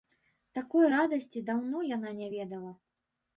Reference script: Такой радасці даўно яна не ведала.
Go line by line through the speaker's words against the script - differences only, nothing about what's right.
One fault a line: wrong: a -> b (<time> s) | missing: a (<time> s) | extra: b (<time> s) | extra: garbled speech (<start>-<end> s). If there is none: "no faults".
no faults